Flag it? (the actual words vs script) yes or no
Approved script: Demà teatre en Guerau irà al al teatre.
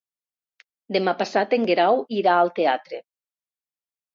yes